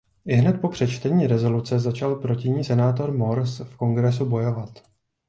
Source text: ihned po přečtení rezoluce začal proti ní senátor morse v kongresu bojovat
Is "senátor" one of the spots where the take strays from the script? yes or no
no